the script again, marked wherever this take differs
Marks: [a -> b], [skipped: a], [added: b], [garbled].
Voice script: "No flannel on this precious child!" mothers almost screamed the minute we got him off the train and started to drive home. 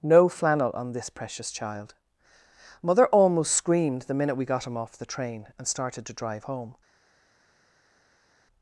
"No flannel on this precious child!" [mothers -> mother] almost screamed the minute we got him off the train and started to drive home.